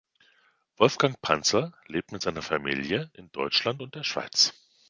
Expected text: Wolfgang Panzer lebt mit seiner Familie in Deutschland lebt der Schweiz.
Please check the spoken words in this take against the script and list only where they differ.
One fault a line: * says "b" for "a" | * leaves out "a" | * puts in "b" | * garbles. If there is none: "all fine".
* says "und" for "lebt"